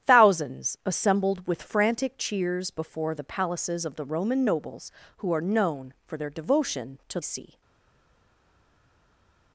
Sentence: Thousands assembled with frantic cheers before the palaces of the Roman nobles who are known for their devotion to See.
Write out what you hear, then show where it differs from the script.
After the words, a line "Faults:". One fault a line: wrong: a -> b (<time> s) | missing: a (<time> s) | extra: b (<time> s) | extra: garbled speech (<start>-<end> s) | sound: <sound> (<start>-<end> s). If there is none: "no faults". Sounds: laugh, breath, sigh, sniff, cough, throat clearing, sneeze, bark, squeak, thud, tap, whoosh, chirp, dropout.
Thousands assembled with frantic cheers before the palaces of the Roman nobles who are known for their devotion to See.
Faults:
no faults